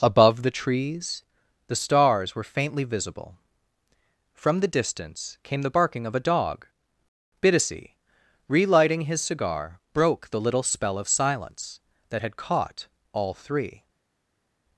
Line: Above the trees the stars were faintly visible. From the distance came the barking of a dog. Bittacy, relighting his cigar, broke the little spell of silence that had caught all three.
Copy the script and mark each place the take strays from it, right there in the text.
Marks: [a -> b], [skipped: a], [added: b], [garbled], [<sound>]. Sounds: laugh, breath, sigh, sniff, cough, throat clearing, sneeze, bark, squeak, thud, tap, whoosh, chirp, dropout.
Above the trees the stars were faintly visible. From the distance came the barking of a dog. Bittacy, relighting his cigar, broke the little spell of silence that had caught all three.